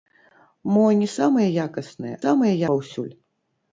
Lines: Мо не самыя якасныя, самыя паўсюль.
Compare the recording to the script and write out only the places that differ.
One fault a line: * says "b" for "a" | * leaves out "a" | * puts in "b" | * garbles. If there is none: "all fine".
all fine